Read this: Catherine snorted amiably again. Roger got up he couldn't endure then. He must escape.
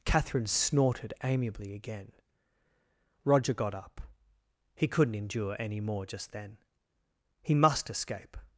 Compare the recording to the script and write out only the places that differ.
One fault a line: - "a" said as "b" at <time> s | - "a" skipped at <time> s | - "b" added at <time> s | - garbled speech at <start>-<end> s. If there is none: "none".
- "any more just" added at 5.6 s